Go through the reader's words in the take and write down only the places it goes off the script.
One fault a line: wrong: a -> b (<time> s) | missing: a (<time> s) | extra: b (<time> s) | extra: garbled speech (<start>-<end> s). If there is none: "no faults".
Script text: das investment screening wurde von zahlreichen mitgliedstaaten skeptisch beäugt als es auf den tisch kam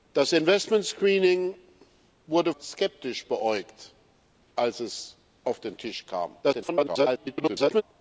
missing: von zahlreichen mitgliedstaaten (2.5 s)
extra: garbled speech (6.4-7.8 s)